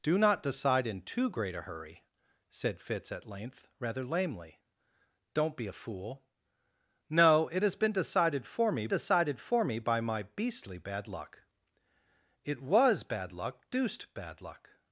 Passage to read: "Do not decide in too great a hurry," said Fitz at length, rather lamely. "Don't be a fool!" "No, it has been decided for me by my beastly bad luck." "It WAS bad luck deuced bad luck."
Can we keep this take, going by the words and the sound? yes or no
no